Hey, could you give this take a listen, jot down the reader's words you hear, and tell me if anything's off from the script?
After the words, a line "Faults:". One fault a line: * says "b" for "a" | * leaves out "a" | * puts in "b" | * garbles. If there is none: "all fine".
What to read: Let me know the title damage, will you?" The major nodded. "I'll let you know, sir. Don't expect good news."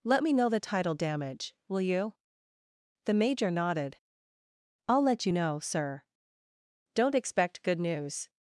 Let me know the title damage, will you?" The major nodded. "I'll let you know, sir. Don't expect good news."
Faults:
all fine